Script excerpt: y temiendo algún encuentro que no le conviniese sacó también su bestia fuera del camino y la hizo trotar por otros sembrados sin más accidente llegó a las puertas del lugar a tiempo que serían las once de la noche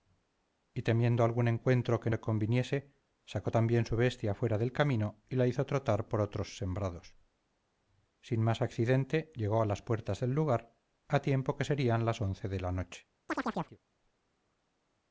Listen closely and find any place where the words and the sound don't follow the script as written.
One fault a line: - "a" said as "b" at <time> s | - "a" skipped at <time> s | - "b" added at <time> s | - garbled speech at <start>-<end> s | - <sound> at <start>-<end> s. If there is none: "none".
- "no" skipped at 2.1 s
- chirp at 13.3-13.8 s